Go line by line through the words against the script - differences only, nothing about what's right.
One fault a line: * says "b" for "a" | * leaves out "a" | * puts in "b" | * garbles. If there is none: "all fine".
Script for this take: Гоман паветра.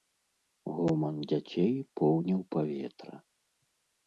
* puts in "дзяцей поўніў"